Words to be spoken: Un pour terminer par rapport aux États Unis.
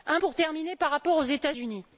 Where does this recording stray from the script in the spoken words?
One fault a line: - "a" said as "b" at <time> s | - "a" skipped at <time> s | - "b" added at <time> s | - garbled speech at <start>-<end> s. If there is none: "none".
none